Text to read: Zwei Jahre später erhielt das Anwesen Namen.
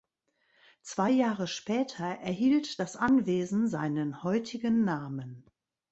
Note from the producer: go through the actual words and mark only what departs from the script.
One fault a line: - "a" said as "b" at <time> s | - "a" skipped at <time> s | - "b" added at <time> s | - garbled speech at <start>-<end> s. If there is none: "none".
- "seinen heutigen" added at 3.7 s